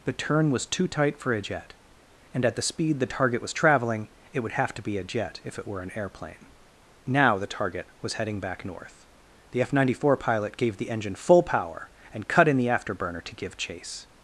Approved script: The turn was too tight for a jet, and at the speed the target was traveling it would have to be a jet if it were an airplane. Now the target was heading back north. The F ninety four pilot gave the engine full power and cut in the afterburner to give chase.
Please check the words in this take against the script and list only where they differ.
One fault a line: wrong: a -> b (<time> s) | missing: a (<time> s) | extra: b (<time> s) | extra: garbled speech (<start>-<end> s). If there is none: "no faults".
no faults